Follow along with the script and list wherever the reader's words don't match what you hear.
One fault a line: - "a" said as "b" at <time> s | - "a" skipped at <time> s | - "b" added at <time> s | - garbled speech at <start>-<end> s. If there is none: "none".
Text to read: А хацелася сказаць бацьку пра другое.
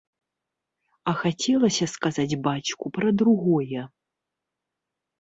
none